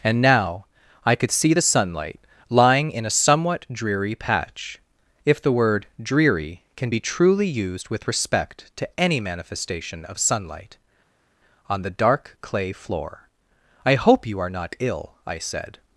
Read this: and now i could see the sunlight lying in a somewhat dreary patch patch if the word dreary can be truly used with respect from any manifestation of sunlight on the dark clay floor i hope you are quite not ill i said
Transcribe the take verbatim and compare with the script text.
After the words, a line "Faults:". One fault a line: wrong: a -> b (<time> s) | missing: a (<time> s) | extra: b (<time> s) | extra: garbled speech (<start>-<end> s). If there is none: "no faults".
and now i could see the sunlight lying in a somewhat dreary patch if the word dreary can be truly used with respect to any manifestation of sunlight on the dark clay floor i hope you are not ill i said
Faults:
missing: patch (4.8 s)
wrong: from -> to (8.8 s)
missing: quite (14.5 s)